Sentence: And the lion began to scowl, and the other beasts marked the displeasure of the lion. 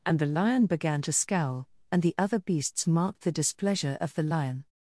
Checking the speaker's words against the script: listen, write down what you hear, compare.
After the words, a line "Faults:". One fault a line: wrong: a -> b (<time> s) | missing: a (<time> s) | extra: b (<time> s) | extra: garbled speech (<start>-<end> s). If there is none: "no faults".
And the lion began to scowl, and the other beasts marked the displeasure of the lion.
Faults:
no faults